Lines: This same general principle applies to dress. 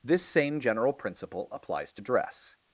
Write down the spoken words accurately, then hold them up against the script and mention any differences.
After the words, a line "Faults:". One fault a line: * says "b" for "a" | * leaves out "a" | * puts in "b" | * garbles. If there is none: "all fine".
This same general principle applies to dress.
Faults:
all fine